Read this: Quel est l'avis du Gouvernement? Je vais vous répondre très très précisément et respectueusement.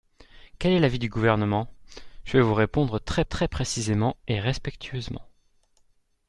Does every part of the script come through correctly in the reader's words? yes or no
yes